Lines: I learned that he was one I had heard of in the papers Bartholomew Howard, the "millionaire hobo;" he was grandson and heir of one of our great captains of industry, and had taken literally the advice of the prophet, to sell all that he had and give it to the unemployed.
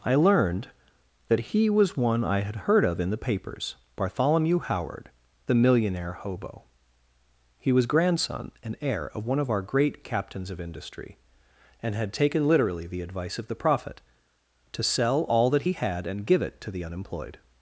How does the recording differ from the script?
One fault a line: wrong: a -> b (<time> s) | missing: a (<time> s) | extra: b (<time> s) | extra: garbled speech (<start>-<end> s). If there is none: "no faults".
no faults